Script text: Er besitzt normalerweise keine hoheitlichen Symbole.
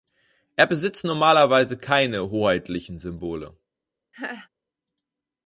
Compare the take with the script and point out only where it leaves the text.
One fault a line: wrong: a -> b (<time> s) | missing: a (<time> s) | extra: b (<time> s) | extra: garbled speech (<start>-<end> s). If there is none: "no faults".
no faults